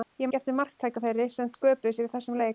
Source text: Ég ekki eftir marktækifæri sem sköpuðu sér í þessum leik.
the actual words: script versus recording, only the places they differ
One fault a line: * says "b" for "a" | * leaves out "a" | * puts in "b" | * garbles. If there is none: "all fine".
all fine